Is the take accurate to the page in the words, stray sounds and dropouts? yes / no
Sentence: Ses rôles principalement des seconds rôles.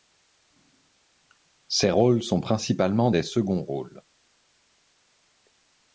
no